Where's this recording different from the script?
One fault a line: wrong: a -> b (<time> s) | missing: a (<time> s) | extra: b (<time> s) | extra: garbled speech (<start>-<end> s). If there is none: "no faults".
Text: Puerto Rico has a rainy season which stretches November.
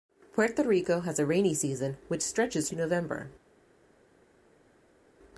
no faults